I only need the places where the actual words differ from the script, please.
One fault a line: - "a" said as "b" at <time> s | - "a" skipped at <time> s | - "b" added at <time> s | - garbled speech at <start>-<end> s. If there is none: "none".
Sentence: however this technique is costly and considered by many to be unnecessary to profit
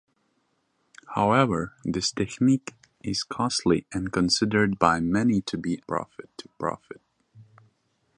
- "unnecessary" said as "profit" at 5.9 s